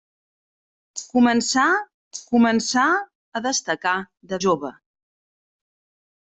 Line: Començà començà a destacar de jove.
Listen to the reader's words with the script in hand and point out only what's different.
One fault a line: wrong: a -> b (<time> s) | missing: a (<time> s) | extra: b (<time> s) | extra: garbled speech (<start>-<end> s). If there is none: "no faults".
no faults